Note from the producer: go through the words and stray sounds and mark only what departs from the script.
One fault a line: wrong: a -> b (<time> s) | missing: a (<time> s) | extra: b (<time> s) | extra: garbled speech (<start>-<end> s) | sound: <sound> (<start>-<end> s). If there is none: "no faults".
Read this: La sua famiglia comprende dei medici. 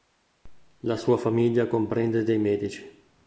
no faults